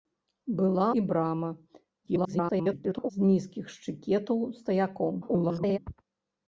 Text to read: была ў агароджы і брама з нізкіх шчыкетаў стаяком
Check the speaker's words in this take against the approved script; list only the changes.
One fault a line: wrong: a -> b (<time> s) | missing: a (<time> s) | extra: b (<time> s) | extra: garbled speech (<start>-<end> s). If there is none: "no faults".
missing: ў агароджы (0.9 s)
extra: garbled speech (2.1-3.1 s)
extra: garbled speech (5.2-5.8 s)